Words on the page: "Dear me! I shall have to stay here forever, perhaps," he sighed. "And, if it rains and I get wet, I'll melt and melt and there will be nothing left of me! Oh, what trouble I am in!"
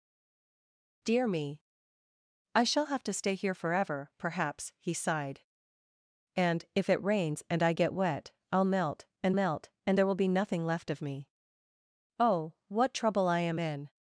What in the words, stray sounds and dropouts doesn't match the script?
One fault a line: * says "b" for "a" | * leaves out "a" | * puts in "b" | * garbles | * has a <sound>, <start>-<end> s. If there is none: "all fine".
all fine